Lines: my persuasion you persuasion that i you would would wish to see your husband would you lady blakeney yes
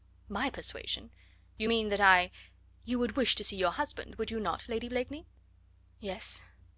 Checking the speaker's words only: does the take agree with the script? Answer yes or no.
no